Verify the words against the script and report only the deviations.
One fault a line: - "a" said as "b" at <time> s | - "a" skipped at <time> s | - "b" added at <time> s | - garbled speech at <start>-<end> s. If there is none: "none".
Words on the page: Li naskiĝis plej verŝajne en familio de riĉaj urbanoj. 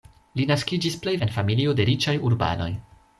- "verŝajne" skipped at 1.1 s